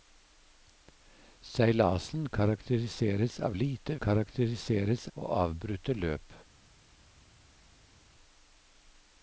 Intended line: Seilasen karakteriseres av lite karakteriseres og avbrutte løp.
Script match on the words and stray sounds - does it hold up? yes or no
yes